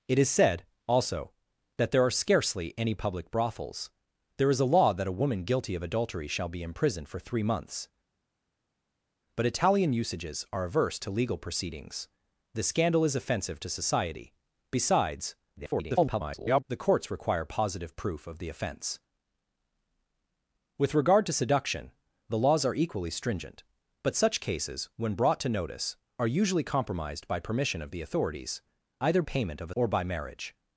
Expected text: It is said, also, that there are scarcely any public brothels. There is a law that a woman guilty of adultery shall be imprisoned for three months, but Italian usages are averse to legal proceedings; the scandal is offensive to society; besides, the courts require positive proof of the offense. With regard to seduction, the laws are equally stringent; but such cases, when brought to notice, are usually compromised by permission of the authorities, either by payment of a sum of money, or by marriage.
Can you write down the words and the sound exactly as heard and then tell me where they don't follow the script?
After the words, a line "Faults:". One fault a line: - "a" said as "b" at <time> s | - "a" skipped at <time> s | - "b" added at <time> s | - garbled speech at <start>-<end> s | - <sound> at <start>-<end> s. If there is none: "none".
It is said, also, that there are scarcely any public brothels. There is a law that a woman guilty of adultery shall be imprisoned for three months, but Italian usages are averse to legal proceedings; the scandal is offensive to society; besides, [garbled] the courts require positive proof of the offense. With regard to seduction, the laws are equally stringent; but such cases, when brought to notice, are usually compromised by permission of the authorities, either payment of a or by marriage.
Faults:
- garbled speech at 15.6-16.6 s
- "by" skipped at 29.2 s
- "sum of money" skipped at 29.7 s